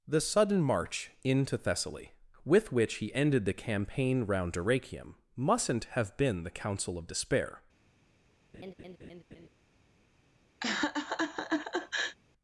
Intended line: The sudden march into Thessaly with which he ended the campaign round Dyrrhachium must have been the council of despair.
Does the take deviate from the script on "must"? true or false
true